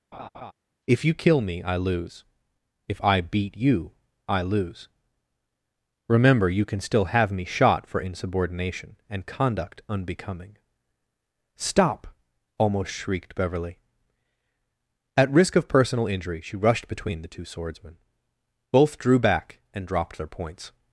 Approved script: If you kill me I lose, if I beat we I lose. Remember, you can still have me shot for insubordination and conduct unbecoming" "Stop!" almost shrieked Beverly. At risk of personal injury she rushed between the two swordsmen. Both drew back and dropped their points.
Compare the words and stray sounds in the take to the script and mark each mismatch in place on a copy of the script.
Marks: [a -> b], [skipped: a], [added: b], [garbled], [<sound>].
[laugh] If you kill me I lose, if I beat [we -> you] I lose. Remember, you can still have me shot for insubordination and conduct unbecoming" "Stop!" almost shrieked Beverly. At risk of personal injury she rushed between the two swordsmen. Both drew back and dropped their points.